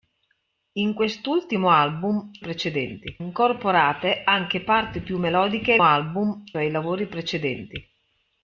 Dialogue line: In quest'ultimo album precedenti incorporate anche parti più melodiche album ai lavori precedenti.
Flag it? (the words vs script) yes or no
no